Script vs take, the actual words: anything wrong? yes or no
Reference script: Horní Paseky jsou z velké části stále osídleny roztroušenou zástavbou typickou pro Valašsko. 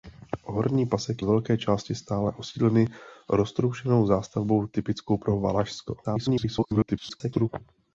yes